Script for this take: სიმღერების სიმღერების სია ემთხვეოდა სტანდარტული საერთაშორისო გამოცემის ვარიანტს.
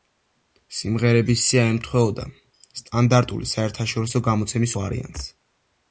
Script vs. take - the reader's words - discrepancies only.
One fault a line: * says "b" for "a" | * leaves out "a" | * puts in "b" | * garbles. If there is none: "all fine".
* leaves out "სიმღერების"